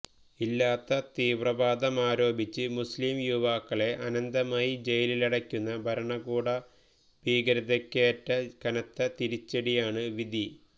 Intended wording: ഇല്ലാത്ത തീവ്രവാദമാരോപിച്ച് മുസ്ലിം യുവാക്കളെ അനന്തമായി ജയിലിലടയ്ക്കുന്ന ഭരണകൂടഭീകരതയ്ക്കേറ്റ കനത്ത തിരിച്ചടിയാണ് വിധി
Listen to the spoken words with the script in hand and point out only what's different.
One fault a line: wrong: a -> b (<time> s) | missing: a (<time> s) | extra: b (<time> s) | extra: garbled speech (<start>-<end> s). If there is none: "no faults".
no faults